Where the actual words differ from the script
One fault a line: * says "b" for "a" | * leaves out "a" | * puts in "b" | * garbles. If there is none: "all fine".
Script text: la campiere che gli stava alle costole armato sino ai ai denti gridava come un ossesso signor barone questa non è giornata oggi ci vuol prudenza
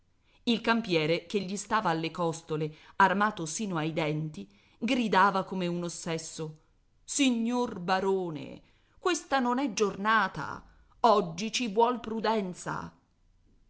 * says "il" for "la"
* leaves out "ai"